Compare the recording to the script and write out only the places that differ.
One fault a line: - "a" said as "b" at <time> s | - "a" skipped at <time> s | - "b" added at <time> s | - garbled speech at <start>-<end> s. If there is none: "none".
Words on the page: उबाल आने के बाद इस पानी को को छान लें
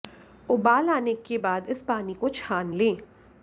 - "को" skipped at 2.3 s